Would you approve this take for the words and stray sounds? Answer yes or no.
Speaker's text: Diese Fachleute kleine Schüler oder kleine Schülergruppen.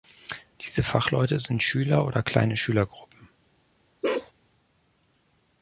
no